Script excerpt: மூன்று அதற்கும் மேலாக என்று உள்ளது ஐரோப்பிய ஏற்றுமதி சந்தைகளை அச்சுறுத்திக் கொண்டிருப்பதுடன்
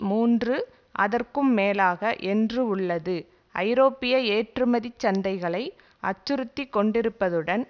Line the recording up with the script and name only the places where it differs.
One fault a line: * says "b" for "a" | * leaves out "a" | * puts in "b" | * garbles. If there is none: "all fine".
all fine